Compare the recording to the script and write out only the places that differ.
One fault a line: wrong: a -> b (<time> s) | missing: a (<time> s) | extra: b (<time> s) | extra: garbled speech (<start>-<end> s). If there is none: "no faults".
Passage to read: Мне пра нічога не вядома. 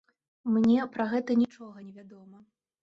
extra: гэта (1.1 s)